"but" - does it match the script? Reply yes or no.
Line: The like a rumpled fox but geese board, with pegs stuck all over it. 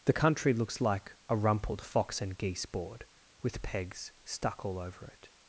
no